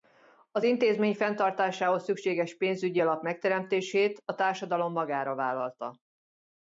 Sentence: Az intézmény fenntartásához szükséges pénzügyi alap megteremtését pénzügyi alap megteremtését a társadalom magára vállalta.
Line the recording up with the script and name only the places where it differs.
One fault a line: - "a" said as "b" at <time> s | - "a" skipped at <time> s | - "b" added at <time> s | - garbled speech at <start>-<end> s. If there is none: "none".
- "pénzügyi alap megteremtését" skipped at 4.2 s